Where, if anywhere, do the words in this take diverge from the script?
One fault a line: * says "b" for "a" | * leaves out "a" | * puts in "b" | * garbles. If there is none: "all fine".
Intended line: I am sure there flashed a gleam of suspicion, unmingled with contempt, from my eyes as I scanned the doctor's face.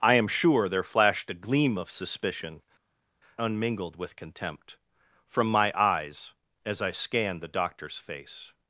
all fine